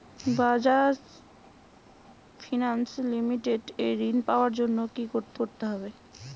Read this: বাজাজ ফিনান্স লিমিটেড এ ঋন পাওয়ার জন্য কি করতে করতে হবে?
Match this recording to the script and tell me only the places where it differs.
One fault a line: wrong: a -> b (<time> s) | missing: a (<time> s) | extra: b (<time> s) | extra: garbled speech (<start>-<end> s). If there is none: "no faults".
no faults